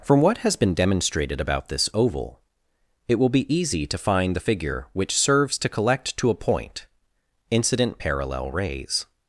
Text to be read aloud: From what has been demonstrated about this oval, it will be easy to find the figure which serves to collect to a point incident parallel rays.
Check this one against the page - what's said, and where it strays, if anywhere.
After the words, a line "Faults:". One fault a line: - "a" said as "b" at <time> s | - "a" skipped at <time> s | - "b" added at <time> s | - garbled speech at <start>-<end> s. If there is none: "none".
From what has been demonstrated about this oval, it will be easy to find the figure which serves to collect to a point incident parallel rays.
Faults:
none